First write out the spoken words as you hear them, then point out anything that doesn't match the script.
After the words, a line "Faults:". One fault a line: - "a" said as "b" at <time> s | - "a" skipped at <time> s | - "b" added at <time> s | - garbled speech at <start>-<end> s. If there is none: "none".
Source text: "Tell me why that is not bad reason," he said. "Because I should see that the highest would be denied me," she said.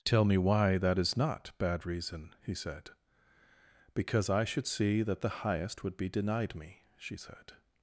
"Tell me why that is not bad reason," he said. "Because I should see that the highest would be denied me," she said.
Faults:
none